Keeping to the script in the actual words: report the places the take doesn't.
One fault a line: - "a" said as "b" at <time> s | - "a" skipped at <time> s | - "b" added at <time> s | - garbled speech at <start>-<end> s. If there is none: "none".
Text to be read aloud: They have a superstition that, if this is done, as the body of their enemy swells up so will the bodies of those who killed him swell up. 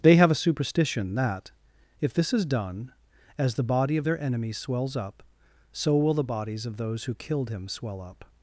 none